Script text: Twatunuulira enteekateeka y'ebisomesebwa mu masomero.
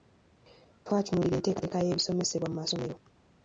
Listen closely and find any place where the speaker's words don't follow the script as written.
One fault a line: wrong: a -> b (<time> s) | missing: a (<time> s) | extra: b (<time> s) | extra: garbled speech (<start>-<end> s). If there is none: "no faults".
no faults